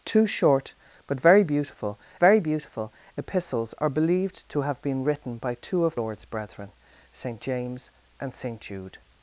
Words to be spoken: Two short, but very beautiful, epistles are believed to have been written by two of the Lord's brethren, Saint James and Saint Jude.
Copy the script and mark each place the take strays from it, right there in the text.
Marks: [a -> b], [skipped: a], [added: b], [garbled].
Two short, but very beautiful, [added: very beautiful] epistles are believed to have been written by two of [skipped: the] Lord's brethren, Saint James and Saint Jude.